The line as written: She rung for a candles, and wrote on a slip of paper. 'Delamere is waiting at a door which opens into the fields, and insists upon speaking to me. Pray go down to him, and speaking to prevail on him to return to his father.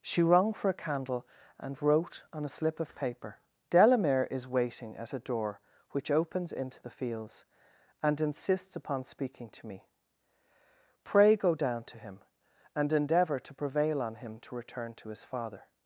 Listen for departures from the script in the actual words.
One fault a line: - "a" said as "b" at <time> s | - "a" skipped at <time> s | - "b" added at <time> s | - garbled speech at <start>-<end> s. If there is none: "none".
- "candles" said as "candle" at 0.7 s
- "speaking" said as "endeavour" at 12.9 s